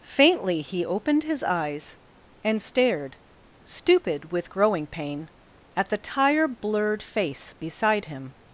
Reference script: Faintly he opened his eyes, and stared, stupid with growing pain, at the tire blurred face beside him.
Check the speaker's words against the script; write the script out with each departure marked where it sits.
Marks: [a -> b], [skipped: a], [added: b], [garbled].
Faintly he opened his eyes, and stared, stupid with growing pain, at the tire blurred face beside him.